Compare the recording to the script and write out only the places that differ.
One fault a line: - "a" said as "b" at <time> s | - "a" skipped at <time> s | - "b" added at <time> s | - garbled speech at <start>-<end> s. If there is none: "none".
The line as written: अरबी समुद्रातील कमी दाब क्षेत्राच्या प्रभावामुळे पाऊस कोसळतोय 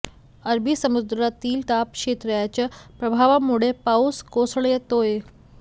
- "कमी" skipped at 1.6 s